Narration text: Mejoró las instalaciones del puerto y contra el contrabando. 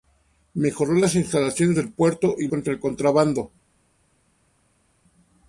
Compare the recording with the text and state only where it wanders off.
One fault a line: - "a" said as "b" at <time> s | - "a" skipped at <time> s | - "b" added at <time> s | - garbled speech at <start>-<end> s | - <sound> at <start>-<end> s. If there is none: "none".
none